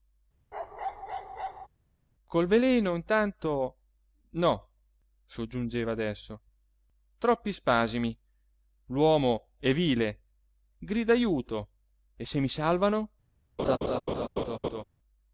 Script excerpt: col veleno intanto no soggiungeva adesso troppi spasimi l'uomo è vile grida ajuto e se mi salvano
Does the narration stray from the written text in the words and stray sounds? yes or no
yes